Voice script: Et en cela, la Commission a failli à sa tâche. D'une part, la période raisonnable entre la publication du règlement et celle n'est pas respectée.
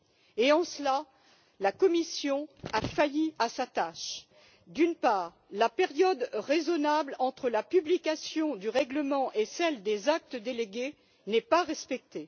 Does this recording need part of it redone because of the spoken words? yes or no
yes